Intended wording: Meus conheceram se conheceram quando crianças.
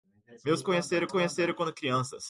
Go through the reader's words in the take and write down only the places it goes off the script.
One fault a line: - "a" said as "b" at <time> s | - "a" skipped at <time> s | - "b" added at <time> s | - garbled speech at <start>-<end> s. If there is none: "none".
none